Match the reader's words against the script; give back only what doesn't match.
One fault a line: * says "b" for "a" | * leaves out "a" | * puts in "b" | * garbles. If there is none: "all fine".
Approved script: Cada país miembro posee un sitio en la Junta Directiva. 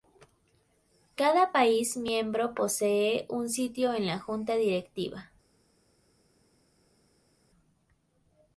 all fine